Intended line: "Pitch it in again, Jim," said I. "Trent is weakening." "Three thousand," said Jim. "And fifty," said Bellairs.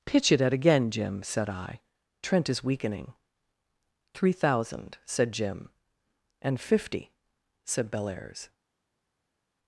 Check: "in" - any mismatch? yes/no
yes